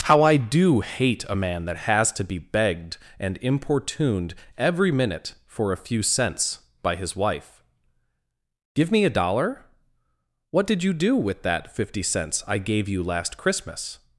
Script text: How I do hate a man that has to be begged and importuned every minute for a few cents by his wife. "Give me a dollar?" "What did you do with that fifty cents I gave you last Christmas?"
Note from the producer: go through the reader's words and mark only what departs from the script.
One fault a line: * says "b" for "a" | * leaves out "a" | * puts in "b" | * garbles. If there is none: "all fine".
all fine